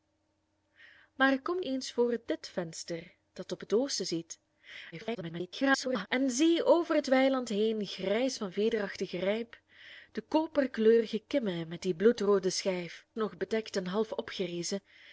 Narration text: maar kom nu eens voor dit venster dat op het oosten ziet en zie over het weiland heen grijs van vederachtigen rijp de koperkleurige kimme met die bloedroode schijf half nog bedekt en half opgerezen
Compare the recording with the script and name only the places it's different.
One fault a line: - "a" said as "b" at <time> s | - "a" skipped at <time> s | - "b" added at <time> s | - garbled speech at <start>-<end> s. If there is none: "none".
- "nu" skipped at 1.6 s
- garbled speech at 4.9-6.1 s
- "half" skipped at 13.0 s